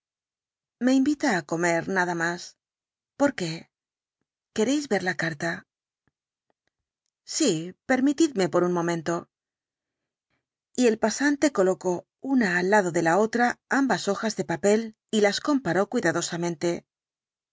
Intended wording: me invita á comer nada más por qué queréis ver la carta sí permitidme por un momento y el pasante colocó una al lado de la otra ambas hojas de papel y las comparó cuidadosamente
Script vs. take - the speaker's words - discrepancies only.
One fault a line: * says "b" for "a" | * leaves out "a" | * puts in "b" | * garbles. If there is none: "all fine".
all fine